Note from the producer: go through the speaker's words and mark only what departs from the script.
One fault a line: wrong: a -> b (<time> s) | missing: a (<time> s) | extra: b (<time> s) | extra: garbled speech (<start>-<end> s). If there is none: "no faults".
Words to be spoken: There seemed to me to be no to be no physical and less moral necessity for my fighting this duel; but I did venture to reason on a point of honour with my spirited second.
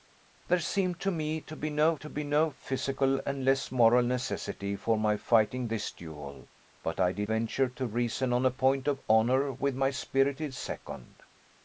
no faults